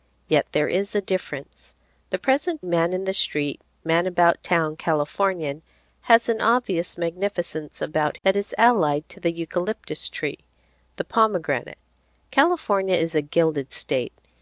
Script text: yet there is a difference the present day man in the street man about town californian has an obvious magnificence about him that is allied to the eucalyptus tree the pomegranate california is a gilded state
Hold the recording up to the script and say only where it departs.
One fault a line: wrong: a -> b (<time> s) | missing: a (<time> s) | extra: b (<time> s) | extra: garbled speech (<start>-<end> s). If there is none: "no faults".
missing: day (2.6 s)
missing: him (8.1 s)